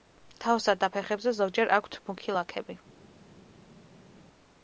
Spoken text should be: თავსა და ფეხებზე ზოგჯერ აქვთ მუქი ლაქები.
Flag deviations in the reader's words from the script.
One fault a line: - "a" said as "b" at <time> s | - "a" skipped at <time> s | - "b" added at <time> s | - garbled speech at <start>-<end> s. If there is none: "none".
none